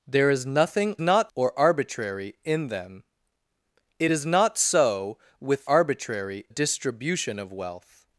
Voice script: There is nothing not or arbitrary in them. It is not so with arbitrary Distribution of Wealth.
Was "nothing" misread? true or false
false